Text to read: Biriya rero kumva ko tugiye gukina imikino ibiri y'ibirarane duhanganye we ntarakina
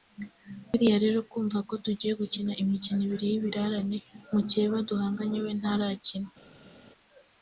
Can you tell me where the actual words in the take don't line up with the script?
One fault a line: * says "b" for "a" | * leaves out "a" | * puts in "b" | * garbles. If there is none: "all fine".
* puts in "mukeba"